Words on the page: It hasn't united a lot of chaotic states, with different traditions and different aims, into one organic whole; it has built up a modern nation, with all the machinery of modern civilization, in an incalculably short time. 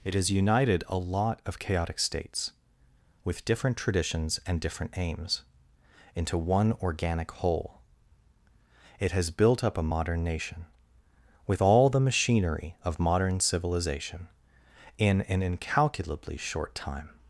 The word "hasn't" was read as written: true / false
false